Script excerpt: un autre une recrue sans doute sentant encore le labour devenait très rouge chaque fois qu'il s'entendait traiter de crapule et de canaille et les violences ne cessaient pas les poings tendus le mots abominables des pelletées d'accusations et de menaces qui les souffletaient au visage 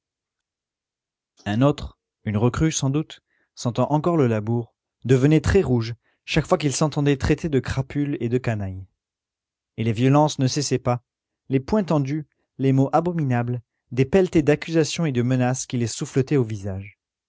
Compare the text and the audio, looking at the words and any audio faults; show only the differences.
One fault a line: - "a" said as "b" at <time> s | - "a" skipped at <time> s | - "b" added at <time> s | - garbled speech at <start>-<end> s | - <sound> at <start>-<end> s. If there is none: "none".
- "le" said as "les" at 12.6 s